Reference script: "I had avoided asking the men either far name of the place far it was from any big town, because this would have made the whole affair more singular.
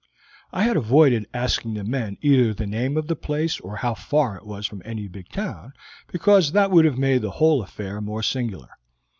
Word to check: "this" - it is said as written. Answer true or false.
false